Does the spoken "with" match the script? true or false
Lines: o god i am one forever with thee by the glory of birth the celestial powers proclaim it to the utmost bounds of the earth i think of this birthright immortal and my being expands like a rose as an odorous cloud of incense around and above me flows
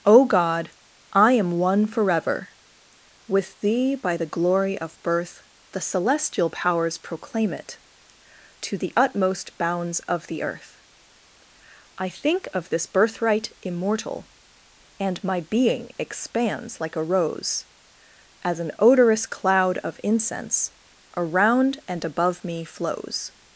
true